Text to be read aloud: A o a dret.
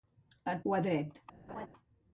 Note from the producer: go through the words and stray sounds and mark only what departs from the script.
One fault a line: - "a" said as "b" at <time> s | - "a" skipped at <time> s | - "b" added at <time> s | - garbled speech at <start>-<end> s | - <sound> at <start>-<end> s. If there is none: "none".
- laugh at 1.5-1.7 s